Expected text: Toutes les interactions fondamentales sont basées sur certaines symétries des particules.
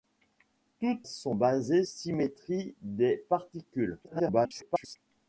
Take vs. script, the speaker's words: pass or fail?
fail